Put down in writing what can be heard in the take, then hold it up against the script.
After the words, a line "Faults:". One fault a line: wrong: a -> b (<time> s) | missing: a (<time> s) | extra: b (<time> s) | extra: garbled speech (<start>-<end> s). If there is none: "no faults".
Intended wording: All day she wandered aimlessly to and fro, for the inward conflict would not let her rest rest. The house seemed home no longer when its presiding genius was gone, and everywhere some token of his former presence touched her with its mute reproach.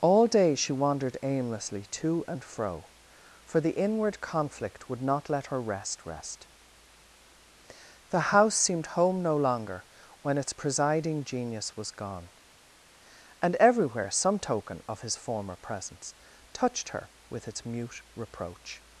All day she wandered aimlessly to and fro, for the inward conflict would not let her rest rest. The house seemed home no longer when its presiding genius was gone, and everywhere some token of his former presence touched her with its mute reproach.
Faults:
no faults